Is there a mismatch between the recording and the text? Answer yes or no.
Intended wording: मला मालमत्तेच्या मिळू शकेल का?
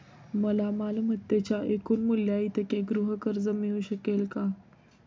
yes